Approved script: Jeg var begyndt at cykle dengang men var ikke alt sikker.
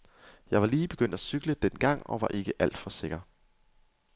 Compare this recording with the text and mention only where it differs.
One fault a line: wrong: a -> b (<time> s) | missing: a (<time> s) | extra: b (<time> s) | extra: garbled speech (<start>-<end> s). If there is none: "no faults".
extra: lige (0.7 s)
wrong: men -> og (2.1 s)
extra: for (2.8 s)